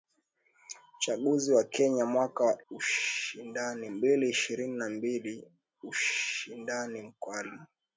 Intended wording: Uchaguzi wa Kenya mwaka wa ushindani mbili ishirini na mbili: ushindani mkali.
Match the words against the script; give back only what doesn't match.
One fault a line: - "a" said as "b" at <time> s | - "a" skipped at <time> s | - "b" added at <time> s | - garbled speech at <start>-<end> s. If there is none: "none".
none